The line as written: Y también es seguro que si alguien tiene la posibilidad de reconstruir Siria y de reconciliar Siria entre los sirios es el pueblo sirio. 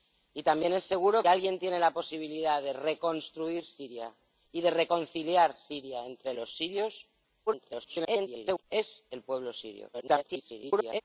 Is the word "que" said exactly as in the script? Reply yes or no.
no